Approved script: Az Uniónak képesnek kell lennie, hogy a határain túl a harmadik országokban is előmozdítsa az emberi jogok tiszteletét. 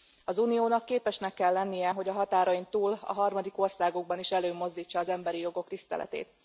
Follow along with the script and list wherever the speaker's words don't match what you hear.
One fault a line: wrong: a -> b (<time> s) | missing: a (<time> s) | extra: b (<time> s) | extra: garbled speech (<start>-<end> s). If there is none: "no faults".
no faults